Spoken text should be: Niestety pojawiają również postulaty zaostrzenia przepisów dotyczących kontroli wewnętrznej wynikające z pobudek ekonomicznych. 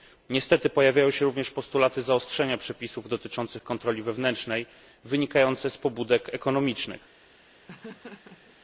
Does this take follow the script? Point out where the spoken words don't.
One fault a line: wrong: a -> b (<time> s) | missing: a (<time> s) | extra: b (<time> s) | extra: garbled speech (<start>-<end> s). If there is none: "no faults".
extra: się (1.1 s)